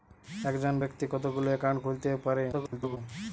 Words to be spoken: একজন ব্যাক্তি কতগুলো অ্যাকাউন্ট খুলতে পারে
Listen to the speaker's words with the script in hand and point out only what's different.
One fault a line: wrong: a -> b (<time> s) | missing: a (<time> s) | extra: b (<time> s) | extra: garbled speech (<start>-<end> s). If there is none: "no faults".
extra: garbled speech (2.5-3.0 s)